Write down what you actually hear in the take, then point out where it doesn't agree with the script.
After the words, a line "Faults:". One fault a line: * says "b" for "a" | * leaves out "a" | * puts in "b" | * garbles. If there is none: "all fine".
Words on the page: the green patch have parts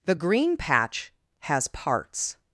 the green patch has parts
Faults:
* says "has" for "have"